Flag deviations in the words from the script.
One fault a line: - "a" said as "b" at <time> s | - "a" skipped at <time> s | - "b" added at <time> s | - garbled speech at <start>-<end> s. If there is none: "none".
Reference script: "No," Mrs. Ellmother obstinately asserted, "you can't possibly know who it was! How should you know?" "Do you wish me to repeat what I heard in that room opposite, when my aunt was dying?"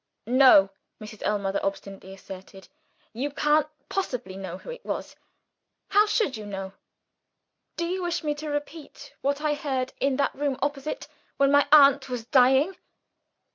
none